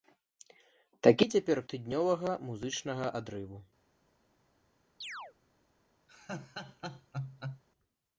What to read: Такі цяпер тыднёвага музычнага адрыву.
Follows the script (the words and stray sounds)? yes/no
no